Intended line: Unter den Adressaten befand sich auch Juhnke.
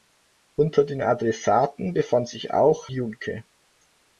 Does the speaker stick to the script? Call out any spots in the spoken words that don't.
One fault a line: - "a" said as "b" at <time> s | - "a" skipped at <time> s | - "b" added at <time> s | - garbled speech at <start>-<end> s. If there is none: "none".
none